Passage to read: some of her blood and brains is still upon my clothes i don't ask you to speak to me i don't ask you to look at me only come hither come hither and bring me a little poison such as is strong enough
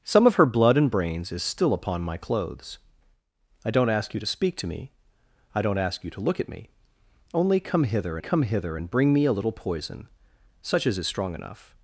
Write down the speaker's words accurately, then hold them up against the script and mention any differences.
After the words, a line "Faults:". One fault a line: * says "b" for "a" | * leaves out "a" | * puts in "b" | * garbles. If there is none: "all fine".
some of her blood and brains is still upon my clothes i don't ask you to speak to me i don't ask you to look at me only come hither come hither and bring me a little poison such as is strong enough
Faults:
all fine